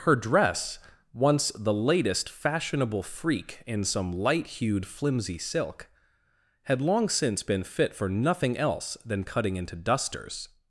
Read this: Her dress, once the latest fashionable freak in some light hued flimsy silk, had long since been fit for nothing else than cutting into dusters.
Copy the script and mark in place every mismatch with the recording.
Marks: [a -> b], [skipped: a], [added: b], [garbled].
Her dress, once the latest fashionable freak in some light hued flimsy silk, had long since been fit for nothing else than cutting into dusters.